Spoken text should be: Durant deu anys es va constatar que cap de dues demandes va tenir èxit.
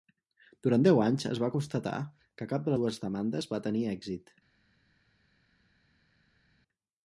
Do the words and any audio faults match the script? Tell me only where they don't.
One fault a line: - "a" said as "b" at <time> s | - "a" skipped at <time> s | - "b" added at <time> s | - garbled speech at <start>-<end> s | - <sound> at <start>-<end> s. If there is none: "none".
none